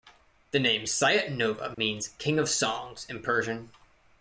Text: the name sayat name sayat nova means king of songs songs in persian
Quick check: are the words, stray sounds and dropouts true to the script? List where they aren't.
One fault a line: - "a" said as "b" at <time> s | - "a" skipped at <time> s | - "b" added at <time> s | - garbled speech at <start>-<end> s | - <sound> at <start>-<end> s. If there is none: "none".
- "name sayat" skipped at 1.3 s
- dropout at 1.7-1.8 s
- "songs" skipped at 3.1 s